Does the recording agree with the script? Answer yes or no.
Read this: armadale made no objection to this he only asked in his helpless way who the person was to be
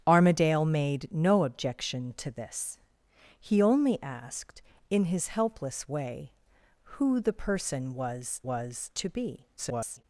no